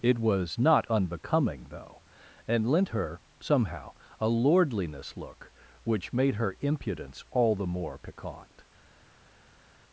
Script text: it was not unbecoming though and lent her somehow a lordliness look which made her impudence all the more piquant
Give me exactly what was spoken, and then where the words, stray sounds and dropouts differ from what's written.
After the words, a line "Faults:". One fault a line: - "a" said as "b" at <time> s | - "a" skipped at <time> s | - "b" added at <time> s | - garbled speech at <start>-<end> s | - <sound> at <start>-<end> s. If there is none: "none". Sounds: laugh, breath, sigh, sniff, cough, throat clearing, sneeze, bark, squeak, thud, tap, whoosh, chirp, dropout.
it was not unbecoming though and lent her somehow a lordliness look which made her impudence all the more piquant
Faults:
none